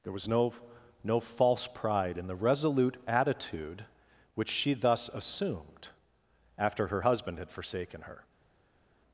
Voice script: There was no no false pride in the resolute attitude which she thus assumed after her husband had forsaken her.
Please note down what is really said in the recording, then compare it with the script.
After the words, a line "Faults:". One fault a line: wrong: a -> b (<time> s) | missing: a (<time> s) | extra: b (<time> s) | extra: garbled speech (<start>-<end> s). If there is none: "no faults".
There was no no false pride in the resolute attitude which she thus assumed after her husband had forsaken her.
Faults:
no faults